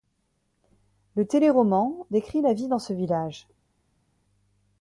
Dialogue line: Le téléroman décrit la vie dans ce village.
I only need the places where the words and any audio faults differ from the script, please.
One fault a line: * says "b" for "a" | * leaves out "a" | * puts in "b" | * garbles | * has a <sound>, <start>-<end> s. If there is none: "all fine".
all fine